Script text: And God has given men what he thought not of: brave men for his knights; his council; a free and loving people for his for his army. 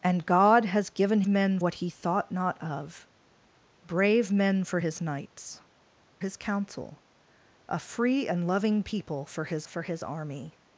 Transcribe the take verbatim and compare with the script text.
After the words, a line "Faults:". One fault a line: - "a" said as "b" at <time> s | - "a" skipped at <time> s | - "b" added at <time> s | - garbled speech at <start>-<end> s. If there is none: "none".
And God has given men what he thought not of: brave men for his knights; his council; a free and loving people for his for his army.
Faults:
none